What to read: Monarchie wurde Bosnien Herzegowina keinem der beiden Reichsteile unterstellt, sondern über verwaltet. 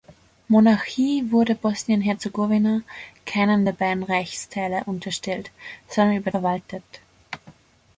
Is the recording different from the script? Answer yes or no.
no